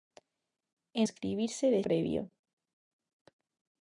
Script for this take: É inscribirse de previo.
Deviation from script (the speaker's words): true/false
false